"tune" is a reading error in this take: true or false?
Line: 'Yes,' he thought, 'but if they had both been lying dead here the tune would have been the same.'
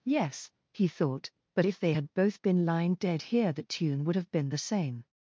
false